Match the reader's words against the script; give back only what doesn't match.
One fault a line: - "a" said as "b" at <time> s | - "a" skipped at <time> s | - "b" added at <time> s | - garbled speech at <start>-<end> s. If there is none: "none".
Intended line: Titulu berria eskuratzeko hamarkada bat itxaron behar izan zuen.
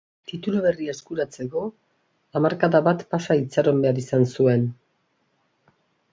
- "pasa" added at 3.1 s